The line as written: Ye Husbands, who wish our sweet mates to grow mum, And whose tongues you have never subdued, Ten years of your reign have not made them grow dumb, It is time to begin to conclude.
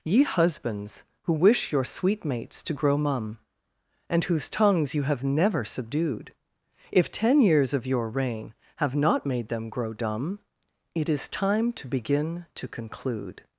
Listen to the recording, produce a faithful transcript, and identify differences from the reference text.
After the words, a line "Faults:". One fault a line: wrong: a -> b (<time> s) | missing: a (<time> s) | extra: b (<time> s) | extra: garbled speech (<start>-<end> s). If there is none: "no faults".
Ye Husbands, who wish your sweet mates to grow mum, And whose tongues you have never subdued, If ten years of your reign have not made them grow dumb, It is time to begin to conclude.
Faults:
wrong: our -> your (1.7 s)
extra: If (6.9 s)